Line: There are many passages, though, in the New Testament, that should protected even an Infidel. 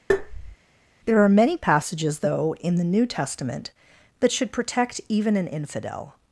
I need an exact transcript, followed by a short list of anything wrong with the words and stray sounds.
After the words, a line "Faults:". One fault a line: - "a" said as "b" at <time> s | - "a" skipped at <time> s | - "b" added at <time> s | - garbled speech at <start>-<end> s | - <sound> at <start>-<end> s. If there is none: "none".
There are many passages, though, in the New Testament, that should protect even an Infidel.
Faults:
- tap at 0.1-0.6 s
- "protected" said as "protect" at 4.5 s